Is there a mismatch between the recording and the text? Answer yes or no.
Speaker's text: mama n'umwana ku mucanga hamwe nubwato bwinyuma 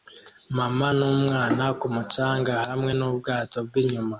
no